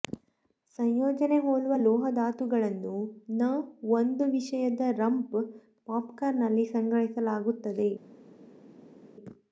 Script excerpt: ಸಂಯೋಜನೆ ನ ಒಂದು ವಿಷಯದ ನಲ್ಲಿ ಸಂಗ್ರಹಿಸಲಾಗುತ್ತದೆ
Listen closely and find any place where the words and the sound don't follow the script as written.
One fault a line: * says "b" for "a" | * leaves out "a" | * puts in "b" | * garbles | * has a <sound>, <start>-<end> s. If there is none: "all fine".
* puts in "ಹೋಲುವ ಲೋಹ ಧಾತುಗಳನ್ನು"
* puts in "ರಂಪ್ ಪಾಪ್ಕಾರ್ನ್"